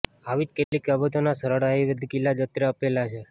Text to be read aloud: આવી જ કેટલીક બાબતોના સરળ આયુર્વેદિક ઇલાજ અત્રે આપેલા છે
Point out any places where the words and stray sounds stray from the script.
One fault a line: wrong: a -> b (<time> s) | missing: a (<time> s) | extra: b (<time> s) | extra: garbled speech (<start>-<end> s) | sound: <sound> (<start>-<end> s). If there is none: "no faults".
sound: dropout (0.6-0.7 s)